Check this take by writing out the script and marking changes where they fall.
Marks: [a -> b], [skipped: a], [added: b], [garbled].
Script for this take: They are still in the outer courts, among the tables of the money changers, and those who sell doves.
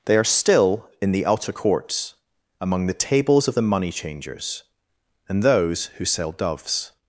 They are still in the outer courts, among the tables of the money changers, and those who sell doves.